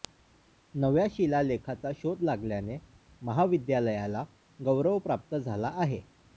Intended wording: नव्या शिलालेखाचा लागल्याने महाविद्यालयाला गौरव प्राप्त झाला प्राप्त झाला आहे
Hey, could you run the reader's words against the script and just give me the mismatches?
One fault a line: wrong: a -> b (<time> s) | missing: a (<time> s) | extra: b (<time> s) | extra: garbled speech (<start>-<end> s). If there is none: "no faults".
extra: शोध (1.9 s)
missing: प्राप्त झाला (5.7 s)